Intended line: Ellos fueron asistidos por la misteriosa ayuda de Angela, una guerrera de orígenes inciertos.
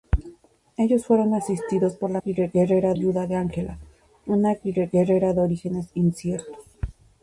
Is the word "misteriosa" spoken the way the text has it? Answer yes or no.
no